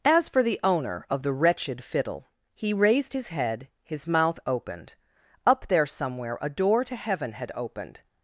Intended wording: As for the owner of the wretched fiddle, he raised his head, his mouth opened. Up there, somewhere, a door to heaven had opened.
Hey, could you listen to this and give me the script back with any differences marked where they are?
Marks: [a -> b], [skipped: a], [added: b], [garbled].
As for the owner of the wretched fiddle, he raised his head, his mouth opened. Up there, somewhere, a door to heaven had opened.